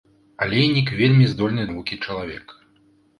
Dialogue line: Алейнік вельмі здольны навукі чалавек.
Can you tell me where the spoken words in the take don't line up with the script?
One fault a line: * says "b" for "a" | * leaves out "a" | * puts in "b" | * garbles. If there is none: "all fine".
all fine